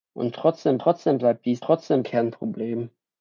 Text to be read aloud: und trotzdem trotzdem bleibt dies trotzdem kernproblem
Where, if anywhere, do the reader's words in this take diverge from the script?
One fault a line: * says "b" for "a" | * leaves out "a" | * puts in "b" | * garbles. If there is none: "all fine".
all fine